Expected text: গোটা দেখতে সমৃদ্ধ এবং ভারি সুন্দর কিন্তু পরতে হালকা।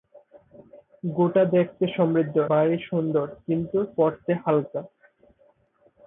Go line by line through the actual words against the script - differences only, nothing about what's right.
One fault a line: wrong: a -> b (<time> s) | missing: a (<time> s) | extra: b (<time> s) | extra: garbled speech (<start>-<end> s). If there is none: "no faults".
missing: এবং (2.4 s)